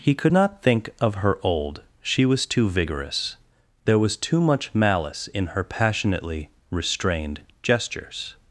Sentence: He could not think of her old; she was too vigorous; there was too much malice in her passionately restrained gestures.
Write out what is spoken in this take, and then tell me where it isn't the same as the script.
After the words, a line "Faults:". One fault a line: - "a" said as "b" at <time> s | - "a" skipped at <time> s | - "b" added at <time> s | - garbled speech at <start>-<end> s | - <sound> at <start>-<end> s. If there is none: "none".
He could not think of her old; she was too vigorous; there was too much malice in her passionately restrained gestures.
Faults:
none